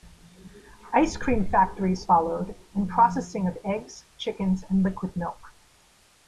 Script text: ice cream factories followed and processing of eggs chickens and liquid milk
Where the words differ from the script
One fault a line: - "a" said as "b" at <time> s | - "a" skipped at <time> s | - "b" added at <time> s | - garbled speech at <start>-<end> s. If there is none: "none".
none